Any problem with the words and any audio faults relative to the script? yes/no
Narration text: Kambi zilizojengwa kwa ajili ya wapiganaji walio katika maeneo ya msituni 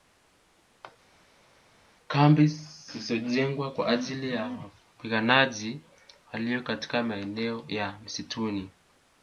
no